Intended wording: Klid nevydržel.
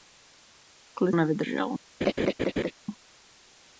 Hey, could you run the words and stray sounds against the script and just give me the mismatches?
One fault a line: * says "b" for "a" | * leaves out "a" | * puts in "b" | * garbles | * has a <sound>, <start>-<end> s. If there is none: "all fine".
* has a laugh, 2.0-2.7 s